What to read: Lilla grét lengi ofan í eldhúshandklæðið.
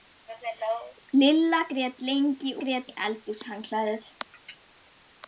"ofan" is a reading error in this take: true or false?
true